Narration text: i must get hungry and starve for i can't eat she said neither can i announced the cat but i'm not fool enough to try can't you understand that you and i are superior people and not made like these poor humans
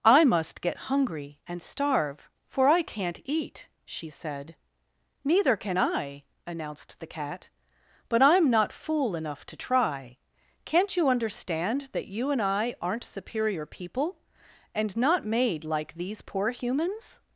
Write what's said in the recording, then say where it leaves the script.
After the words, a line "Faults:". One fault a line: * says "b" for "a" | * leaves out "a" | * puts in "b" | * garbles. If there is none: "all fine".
i must get hungry and starve for i can't eat she said neither can i announced the cat but i'm not fool enough to try can't you understand that you and i aren't superior people and not made like these poor humans
Faults:
* says "aren't" for "are"